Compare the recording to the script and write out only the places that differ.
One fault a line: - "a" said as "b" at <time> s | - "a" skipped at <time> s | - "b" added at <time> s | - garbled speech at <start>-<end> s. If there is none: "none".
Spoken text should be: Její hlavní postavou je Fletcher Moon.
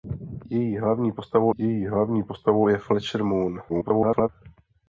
- "její hlavní postavou" added at 1.6 s
- garbled speech at 3.7-4.3 s